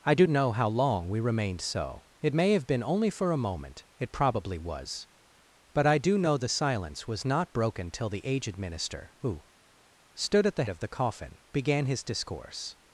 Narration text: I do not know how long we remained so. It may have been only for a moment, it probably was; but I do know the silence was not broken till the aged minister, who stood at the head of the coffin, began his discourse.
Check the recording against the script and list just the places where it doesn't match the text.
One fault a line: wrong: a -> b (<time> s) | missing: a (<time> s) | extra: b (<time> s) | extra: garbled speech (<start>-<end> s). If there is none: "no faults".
missing: not (0.2 s)
missing: head (10.7 s)